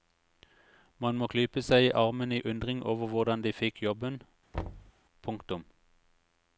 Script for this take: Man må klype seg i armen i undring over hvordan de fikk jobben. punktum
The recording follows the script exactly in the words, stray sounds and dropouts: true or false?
false